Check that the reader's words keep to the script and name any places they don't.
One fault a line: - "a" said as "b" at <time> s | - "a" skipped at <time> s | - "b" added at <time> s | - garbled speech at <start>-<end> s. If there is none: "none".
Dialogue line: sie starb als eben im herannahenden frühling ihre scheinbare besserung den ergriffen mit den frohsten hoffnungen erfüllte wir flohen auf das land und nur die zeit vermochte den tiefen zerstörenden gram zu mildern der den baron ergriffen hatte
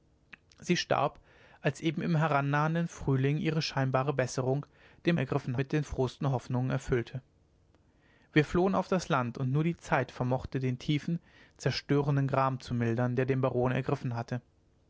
none